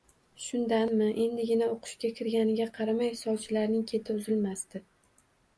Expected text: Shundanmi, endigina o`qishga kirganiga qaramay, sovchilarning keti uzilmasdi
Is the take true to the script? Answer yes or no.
yes